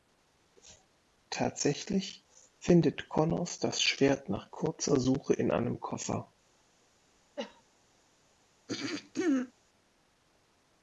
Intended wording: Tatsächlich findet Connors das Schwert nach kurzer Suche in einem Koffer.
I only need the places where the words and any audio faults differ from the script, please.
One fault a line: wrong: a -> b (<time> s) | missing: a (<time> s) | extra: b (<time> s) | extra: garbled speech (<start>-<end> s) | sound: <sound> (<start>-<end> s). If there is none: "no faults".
sound: cough (7.4-7.6 s)
sound: throat clearing (8.7-9.5 s)